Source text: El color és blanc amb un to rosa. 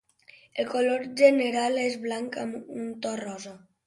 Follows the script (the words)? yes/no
no